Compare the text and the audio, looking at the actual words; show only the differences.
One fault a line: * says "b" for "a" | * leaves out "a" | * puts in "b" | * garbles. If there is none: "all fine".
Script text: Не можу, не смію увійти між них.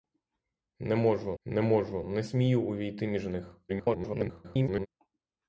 * puts in "можу не"
* garbles